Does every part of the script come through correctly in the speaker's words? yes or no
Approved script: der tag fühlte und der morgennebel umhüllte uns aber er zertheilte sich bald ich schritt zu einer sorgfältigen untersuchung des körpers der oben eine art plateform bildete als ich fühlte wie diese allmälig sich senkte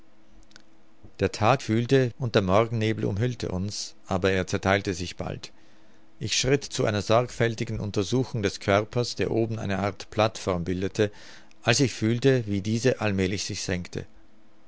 yes